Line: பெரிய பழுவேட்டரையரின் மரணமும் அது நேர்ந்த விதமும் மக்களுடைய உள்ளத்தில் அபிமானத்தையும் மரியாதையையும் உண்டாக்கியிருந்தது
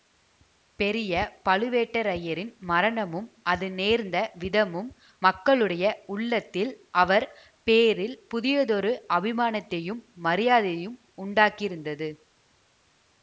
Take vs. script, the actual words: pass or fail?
fail